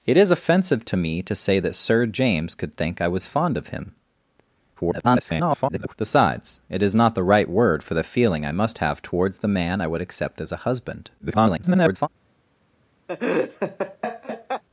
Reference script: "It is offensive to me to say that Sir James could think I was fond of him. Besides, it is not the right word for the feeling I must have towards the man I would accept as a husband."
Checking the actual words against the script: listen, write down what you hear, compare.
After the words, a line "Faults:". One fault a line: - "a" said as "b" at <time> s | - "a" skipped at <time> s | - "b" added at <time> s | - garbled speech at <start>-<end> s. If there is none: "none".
"It is offensive to me to say that Sir James could think I was fond of him. [garbled] Besides, it is not the right word for the feeling I must have towards the man I would accept as a husband." [garbled]
Faults:
- garbled speech at 4.8-5.9 s
- garbled speech at 11.2-12.1 s